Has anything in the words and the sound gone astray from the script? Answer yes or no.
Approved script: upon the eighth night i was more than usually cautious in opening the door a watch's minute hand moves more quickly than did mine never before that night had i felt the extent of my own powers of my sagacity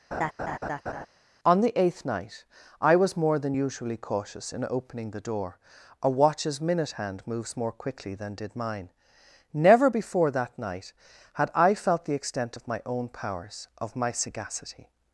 yes